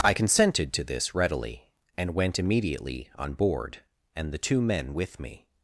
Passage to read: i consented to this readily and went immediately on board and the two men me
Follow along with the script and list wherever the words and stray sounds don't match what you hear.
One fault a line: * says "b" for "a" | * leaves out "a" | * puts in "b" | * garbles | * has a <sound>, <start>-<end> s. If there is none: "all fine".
* puts in "with"